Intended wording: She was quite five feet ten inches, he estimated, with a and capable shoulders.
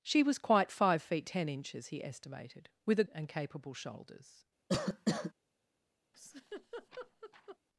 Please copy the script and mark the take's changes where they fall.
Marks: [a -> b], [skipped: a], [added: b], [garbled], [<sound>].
She was quite five feet ten inches, he estimated, with a and capable shoulders. [cough] [laugh]